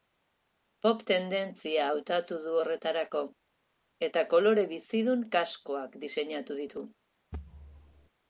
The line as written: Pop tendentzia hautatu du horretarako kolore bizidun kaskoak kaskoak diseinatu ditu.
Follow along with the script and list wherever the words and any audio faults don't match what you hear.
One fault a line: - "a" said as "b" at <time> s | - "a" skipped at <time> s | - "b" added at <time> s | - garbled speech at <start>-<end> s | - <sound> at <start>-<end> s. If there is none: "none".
- "eta" added at 4.1 s
- "kaskoak" skipped at 6.0 s
- thud at 7.3-8.1 s